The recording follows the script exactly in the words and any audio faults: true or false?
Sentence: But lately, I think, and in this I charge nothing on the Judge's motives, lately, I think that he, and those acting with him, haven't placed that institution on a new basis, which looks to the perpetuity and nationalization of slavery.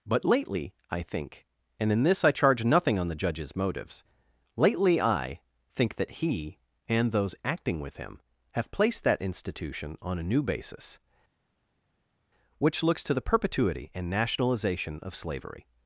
false